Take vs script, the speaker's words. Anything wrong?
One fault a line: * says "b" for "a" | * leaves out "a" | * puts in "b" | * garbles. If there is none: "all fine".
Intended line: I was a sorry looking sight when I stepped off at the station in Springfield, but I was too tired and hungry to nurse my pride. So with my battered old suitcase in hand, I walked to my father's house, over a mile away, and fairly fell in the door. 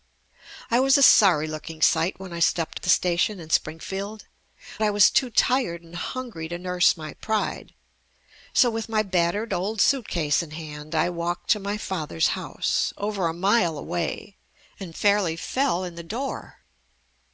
* leaves out "off"
* leaves out "but"